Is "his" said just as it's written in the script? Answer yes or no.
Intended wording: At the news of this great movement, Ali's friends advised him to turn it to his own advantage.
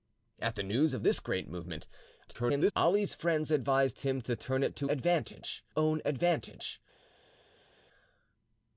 no